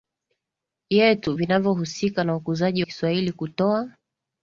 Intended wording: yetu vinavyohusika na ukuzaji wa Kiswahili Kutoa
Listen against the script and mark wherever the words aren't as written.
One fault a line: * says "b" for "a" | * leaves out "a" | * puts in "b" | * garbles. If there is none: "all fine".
* leaves out "wa"